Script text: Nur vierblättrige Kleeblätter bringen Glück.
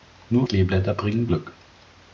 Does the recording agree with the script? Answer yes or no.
no